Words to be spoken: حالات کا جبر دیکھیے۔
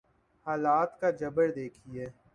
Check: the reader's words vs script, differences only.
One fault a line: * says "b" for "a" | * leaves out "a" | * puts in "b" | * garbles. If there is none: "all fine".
all fine